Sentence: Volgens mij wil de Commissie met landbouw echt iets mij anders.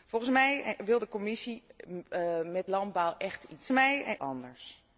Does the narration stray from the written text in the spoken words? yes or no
no